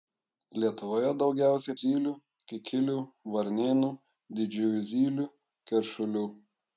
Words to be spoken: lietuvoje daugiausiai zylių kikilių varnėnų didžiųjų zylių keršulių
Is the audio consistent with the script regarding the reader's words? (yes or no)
yes